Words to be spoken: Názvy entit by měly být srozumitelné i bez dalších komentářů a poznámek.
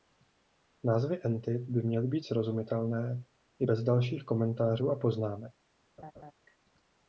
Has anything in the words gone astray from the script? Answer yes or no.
no